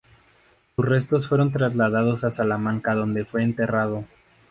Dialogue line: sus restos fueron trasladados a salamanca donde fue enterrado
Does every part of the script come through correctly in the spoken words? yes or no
yes